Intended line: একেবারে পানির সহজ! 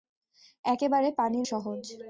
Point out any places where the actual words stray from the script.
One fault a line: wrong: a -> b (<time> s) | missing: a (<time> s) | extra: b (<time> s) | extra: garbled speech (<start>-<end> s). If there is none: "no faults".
no faults